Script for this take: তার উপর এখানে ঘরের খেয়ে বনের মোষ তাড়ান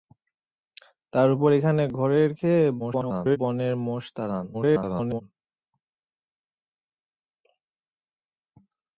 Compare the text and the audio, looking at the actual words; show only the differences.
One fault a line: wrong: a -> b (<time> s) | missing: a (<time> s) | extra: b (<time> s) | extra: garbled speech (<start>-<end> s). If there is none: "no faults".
extra: garbled speech (2.8-3.4 s)
extra: garbled speech (4.5-5.2 s)